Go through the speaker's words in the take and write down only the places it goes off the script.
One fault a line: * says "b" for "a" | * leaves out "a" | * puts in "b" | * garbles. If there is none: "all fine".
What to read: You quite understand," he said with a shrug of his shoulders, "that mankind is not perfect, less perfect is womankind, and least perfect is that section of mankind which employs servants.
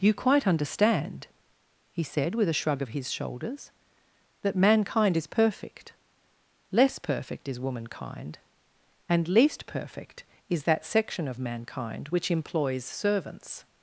* leaves out "not"